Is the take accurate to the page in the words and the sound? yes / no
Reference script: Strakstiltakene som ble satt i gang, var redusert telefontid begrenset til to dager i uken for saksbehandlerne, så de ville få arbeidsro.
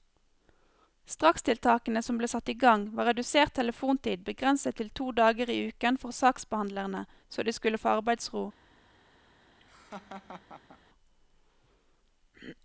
no